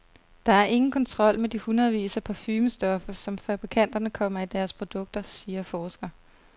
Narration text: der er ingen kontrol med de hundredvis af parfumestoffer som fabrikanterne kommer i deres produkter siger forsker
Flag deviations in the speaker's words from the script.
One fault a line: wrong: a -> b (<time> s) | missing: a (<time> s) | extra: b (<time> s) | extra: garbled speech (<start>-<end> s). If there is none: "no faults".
no faults